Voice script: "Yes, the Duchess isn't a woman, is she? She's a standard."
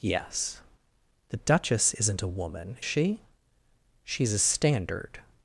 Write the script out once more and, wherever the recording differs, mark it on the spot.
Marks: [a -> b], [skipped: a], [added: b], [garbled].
"Yes, the Duchess isn't a woman, [skipped: is] she? She's a standard."